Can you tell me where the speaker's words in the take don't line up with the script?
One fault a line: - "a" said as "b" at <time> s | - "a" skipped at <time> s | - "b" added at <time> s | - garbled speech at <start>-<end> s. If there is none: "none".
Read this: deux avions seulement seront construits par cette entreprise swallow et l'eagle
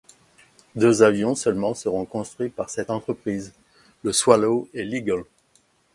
- "le" added at 4.0 s